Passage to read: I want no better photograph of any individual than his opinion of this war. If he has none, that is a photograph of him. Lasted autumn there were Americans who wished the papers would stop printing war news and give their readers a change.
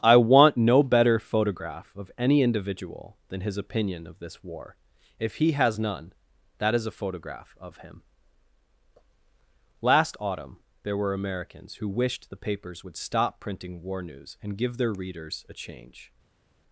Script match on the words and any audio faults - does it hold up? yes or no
no